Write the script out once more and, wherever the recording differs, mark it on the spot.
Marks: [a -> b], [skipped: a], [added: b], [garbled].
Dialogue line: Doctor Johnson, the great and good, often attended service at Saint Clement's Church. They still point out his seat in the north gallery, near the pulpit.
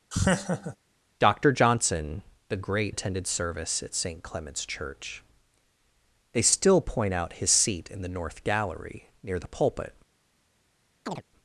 Doctor Johnson, the great [skipped: and good, often] attended service at Saint Clement's Church. They still point out his seat in the north gallery, near the pulpit.